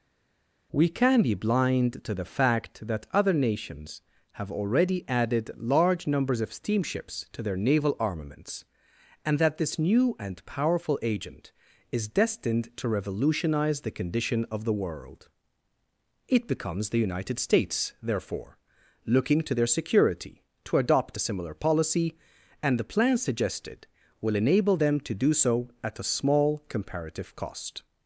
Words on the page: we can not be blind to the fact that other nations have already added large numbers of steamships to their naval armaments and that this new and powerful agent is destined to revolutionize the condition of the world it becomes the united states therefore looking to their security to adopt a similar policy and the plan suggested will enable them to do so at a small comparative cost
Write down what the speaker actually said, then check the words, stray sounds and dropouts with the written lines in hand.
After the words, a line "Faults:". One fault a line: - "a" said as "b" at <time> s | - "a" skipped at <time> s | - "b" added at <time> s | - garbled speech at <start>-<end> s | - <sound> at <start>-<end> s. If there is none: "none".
we can be blind to the fact that other nations have already added large numbers of steamships to their naval armaments and that this new and powerful agent is destined to revolutionize the condition of the world it becomes the united states therefore looking to their security to adopt a similar policy and the plan suggested will enable them to do so at a small comparative cost
Faults:
- "not" skipped at 1.2 s